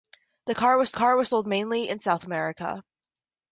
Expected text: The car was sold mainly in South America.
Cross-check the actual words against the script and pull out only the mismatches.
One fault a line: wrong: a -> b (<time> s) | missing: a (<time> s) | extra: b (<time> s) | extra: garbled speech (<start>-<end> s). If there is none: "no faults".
extra: car was (0.9 s)